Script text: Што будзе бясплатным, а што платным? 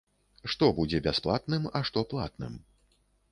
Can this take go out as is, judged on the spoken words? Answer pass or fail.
pass